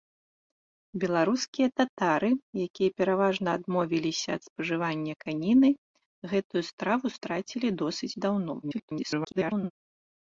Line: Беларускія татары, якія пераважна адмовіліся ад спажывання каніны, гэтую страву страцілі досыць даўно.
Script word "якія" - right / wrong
right